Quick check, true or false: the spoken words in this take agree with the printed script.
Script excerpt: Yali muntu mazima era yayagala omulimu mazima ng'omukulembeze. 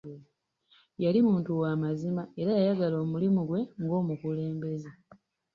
false